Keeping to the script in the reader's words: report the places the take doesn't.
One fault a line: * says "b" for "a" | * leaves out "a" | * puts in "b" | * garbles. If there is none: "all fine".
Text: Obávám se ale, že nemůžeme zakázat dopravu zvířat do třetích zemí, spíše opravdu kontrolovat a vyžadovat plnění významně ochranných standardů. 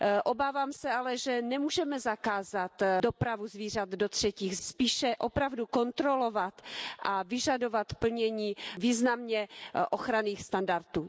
* leaves out "zemí"